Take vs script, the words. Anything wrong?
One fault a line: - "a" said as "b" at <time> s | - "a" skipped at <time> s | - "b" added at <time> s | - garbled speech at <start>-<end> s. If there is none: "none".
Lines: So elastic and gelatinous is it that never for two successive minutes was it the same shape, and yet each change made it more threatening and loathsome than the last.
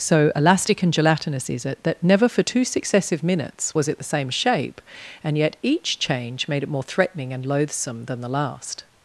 none